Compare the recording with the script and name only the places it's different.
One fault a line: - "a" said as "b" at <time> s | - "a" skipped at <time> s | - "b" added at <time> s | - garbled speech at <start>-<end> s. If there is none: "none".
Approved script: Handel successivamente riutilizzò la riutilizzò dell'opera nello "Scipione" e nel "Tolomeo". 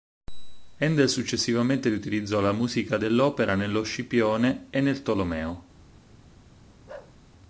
- "riutilizzò" said as "musica" at 2.5 s